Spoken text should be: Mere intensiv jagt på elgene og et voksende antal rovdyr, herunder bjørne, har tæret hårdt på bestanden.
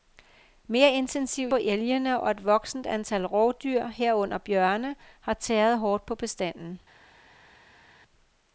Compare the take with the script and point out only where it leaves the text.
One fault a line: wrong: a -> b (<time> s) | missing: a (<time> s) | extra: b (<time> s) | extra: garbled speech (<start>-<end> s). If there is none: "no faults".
missing: jagt (1.5 s)